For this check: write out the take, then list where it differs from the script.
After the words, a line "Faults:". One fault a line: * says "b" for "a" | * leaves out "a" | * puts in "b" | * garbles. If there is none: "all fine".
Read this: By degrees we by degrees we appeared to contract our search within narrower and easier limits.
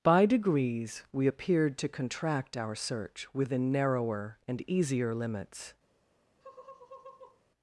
By degrees we appeared to contract our search within narrower and easier limits.
Faults:
* leaves out "by degrees we"